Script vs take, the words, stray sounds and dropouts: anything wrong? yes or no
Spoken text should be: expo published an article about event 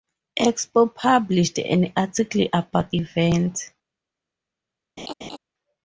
yes